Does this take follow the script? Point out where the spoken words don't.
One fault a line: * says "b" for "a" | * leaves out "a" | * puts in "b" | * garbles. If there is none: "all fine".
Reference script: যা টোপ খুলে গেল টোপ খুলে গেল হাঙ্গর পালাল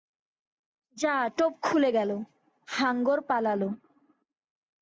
* leaves out "টোপ খুলে গেল"